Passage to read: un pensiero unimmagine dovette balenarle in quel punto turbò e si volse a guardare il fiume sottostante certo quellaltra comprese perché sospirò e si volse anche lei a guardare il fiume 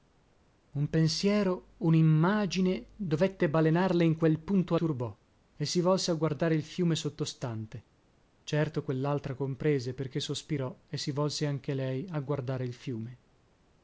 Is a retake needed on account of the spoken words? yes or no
no